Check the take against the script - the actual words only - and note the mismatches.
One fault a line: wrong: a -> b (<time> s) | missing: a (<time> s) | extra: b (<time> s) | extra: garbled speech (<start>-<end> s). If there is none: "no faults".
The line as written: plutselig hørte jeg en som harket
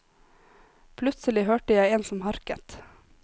no faults